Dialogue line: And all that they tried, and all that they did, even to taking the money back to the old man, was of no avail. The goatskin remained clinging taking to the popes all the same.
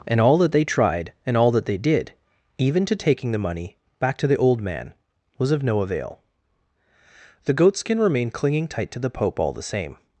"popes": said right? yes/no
no